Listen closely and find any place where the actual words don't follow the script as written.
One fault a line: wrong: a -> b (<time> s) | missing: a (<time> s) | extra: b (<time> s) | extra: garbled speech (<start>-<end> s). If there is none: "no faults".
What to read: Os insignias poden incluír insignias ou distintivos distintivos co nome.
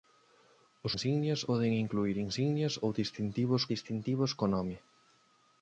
no faults